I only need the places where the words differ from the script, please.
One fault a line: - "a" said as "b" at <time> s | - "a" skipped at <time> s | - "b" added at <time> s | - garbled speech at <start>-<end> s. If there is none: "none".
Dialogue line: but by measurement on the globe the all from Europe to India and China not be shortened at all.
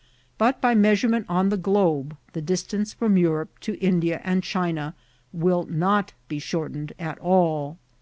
- "all" said as "distance" at 2.4 s
- "will" added at 5.3 s